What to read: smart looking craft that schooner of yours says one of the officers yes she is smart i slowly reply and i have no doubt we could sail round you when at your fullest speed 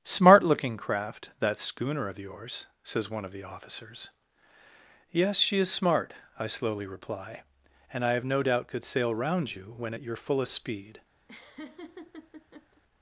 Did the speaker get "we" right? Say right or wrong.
wrong